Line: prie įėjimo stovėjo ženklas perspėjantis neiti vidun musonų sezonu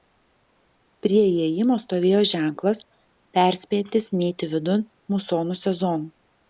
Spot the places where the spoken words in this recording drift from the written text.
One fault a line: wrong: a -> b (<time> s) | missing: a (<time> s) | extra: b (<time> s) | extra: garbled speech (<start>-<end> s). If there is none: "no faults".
no faults